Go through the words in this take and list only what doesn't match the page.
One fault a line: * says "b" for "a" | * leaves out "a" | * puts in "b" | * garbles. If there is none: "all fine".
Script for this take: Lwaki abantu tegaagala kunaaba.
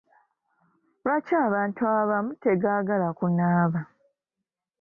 * puts in "abamu"